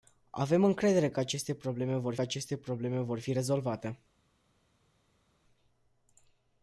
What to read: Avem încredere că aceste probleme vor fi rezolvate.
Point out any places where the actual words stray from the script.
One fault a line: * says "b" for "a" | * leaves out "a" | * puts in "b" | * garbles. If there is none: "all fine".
* puts in "aceste probleme vor"